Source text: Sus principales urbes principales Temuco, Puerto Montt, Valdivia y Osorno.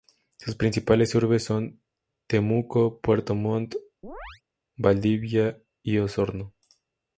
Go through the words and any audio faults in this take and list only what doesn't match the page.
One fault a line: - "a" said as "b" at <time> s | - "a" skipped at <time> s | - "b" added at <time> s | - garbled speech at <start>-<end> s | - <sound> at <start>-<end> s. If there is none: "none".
- "principales" said as "son" at 1.4 s
- chirp at 4.0-4.4 s